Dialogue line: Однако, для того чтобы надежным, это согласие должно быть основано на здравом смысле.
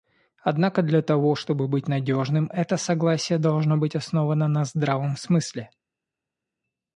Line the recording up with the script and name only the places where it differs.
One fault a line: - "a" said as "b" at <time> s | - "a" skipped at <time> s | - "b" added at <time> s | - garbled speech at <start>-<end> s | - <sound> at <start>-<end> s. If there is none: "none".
- "быть" added at 1.7 s